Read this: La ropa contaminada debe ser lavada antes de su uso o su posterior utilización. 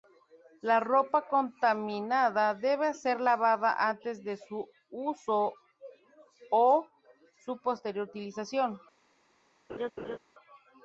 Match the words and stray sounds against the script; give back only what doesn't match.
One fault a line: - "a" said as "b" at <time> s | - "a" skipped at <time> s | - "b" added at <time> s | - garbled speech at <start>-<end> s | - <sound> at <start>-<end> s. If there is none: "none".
- laugh at 9.7-10.2 s